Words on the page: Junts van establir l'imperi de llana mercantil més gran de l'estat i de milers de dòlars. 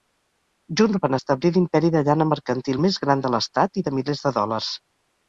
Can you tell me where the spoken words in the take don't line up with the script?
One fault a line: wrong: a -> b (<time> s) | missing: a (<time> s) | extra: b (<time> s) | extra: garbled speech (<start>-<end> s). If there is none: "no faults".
no faults